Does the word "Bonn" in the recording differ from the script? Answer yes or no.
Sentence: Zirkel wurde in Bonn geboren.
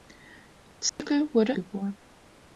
yes